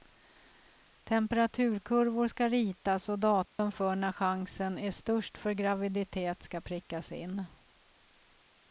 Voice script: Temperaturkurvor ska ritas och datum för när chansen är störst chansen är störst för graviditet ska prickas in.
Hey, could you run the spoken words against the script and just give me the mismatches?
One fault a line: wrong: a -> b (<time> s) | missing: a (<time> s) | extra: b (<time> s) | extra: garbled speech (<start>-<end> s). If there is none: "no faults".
missing: chansen är störst (5.4 s)